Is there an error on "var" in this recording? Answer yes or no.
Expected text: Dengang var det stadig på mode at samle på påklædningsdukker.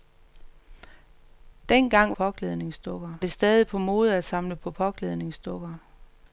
yes